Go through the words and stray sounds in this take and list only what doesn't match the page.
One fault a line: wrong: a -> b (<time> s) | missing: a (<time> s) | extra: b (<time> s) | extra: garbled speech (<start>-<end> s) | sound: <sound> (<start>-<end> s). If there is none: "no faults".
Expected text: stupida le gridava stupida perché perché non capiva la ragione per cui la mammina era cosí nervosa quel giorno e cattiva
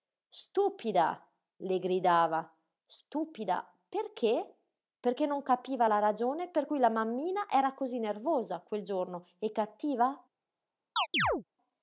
sound: chirp (11.0-11.4 s)